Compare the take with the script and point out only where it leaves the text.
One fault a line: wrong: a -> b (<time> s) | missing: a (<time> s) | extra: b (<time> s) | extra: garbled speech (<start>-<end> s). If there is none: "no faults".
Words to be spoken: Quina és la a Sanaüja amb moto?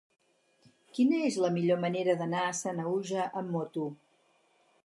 extra: millor manera d'anar (1.6 s)